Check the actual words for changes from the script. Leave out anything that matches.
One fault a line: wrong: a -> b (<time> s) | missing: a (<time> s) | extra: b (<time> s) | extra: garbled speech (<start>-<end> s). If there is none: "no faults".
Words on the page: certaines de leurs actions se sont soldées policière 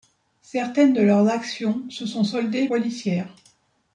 no faults